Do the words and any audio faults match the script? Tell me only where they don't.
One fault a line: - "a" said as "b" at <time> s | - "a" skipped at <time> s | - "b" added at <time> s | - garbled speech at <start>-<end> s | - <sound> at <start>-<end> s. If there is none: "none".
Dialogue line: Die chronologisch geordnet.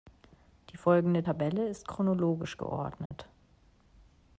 - "folgende Tabelle ist" added at 0.8 s
- dropout at 3.1-3.1 s